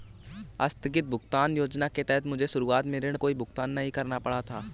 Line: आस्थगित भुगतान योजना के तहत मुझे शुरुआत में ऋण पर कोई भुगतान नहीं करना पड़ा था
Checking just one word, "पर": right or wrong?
wrong